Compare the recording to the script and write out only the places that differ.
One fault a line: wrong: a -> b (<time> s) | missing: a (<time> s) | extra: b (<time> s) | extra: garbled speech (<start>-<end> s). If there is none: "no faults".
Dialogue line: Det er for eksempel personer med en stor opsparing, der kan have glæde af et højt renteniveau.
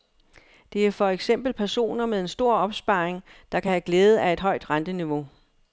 no faults